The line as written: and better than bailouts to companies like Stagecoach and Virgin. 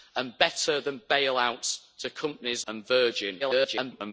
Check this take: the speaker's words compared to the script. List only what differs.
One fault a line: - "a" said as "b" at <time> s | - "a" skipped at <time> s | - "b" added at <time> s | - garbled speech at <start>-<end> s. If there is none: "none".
- "like Stagecoach" skipped at 2.6 s
- garbled speech at 3.4-4.1 s